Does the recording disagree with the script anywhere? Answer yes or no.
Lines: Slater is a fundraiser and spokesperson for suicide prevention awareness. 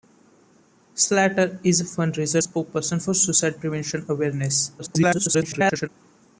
yes